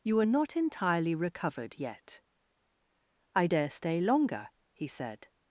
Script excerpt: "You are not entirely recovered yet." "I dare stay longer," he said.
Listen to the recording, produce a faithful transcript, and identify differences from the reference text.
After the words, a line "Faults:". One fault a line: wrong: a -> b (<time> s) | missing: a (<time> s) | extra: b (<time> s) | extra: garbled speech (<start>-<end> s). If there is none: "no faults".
"You are not entirely recovered yet." "I dare stay longer," he said.
Faults:
no faults